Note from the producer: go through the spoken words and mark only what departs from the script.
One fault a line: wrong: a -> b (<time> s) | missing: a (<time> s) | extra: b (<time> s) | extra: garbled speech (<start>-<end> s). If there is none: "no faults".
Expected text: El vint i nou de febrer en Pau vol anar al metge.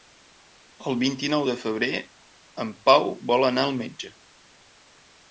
no faults